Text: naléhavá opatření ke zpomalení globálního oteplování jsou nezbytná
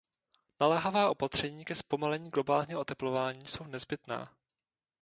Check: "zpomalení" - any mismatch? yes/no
no